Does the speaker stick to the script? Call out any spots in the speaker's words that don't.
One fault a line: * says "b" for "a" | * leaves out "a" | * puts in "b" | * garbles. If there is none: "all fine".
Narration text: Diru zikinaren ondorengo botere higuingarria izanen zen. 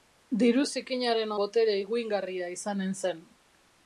* leaves out "ondorengo"